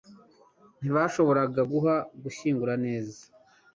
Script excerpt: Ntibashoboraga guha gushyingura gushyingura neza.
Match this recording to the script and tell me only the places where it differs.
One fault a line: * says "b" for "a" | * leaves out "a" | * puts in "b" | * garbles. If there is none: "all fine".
* leaves out "gushyingura"